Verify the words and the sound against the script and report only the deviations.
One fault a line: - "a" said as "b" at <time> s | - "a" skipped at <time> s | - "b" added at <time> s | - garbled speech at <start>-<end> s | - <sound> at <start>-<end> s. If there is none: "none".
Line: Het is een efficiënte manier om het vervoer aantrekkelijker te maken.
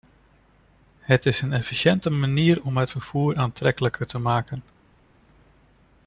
none